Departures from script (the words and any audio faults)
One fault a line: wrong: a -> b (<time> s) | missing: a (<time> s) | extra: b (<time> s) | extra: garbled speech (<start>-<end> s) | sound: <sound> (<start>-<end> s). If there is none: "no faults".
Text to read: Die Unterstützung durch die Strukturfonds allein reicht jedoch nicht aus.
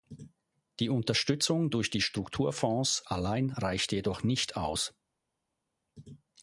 no faults